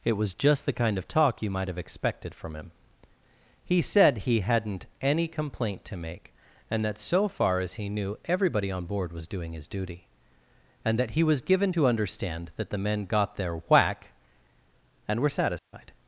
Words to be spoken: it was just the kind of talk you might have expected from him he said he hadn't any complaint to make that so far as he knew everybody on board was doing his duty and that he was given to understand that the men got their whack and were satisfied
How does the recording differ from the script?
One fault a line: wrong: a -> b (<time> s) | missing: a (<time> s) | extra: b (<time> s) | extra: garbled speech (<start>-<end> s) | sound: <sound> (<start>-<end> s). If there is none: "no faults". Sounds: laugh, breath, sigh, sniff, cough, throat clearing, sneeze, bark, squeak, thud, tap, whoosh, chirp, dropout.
extra: and (6.7 s)
sound: dropout (15.6-15.7 s)